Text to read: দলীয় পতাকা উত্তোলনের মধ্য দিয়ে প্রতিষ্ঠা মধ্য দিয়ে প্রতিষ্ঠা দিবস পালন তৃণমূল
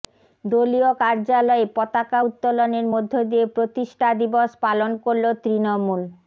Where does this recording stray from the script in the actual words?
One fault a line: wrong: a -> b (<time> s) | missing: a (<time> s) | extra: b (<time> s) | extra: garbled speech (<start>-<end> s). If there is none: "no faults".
extra: কার্যালয়ে (1.0 s)
missing: মধ্য দিয়ে প্রতিষ্ঠা (4.1 s)
extra: করল (5.0 s)